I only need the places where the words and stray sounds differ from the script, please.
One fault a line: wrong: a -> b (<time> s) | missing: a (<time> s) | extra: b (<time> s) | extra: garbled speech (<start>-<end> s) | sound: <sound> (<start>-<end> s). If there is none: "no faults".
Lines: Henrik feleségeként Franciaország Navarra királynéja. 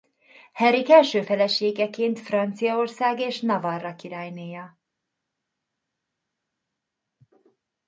extra: első (0.9 s)
extra: és (3.2 s)